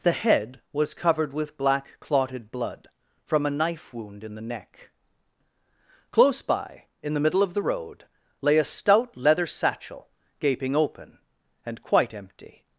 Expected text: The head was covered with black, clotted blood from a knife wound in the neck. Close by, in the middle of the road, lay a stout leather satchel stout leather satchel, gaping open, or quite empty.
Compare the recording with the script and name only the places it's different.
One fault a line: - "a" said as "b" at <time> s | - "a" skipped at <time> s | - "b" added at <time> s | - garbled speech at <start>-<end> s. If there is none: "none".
- "stout leather satchel" skipped at 10.1 s
- "or" said as "and" at 11.7 s